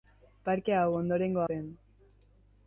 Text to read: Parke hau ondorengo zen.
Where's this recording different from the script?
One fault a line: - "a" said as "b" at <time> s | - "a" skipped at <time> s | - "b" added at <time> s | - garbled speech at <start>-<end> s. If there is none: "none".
none